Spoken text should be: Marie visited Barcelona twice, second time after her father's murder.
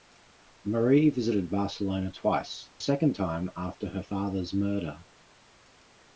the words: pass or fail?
pass